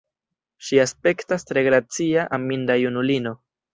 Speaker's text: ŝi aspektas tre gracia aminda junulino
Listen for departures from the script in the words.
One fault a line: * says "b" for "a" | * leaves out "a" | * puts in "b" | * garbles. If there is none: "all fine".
all fine